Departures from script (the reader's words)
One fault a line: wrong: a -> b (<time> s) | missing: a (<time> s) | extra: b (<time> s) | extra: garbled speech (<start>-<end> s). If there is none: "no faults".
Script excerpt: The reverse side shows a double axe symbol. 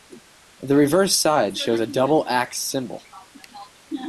no faults